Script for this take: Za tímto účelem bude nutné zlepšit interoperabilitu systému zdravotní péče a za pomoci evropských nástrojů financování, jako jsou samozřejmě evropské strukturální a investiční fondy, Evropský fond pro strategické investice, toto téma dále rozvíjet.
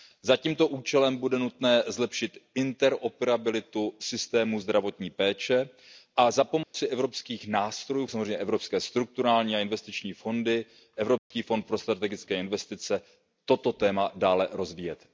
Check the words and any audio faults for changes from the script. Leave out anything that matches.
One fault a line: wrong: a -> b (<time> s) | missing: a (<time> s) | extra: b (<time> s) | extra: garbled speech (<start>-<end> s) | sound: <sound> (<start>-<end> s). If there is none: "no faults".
sound: dropout (6.6-6.7 s)
missing: financování jako jsou (8.1 s)
sound: dropout (11.2-11.3 s)